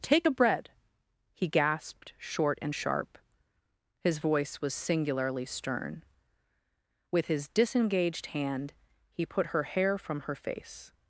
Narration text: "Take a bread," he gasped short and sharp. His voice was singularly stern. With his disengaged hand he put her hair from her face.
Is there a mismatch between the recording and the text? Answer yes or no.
no